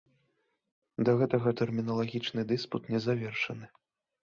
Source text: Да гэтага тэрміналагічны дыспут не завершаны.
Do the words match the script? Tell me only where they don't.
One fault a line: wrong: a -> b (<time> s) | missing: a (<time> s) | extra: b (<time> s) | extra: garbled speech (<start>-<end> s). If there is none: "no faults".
no faults